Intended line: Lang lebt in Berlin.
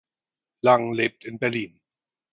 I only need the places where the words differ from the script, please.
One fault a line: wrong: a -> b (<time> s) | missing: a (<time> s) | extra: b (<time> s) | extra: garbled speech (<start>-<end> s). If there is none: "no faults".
no faults